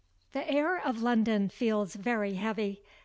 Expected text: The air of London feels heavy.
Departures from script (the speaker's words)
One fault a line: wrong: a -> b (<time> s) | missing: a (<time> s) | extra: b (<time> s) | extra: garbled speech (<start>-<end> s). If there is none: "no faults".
extra: very (2.0 s)